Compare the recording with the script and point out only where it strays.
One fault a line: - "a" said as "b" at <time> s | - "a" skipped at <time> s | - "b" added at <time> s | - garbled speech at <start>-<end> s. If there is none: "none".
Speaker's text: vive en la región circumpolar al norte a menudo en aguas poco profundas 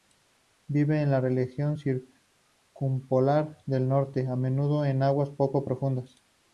- "al" said as "del" at 3.7 s